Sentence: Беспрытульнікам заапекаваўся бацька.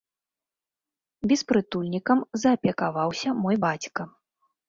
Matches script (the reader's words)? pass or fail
fail